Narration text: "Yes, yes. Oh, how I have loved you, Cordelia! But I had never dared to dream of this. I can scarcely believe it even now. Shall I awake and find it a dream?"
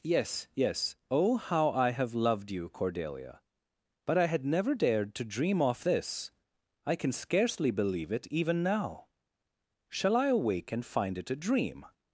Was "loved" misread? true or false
false